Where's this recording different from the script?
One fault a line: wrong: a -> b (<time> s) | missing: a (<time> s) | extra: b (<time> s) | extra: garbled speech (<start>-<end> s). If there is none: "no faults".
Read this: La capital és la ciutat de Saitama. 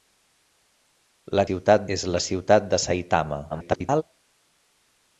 wrong: capital -> ciutat (1.5 s)
extra: garbled speech (3.5-4.0 s)